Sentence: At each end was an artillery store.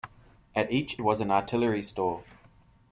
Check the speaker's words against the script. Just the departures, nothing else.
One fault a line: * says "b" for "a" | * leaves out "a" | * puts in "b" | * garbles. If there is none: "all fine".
* leaves out "end"